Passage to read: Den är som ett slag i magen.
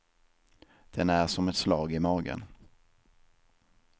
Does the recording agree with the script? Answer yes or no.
yes